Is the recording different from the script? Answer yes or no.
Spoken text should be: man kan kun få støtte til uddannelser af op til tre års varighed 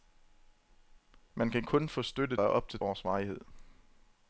yes